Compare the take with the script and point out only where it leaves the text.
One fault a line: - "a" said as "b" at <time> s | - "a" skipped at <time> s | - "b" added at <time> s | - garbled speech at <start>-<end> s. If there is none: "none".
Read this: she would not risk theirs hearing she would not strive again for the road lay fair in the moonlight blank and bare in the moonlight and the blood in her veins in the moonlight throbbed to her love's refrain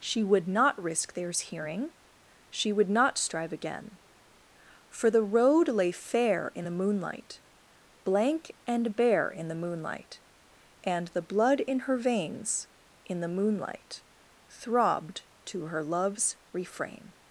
none